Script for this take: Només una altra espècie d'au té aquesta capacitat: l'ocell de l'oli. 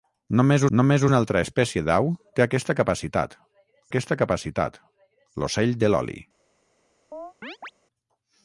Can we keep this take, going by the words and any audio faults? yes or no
no